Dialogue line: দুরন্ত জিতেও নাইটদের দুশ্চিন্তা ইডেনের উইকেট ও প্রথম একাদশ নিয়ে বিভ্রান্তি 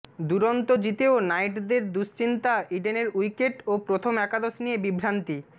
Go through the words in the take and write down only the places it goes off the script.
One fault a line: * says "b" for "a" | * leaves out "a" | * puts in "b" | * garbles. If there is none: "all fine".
all fine